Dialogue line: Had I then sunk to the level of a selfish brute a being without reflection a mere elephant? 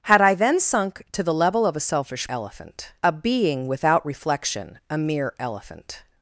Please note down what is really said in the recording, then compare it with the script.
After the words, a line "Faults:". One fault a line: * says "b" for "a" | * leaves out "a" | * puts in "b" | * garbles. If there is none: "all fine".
Had I then sunk to the level of a selfish elephant a being without reflection a mere elephant?
Faults:
* says "elephant" for "brute"